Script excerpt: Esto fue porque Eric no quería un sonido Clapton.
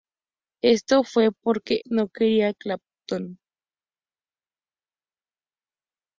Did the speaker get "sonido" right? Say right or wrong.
wrong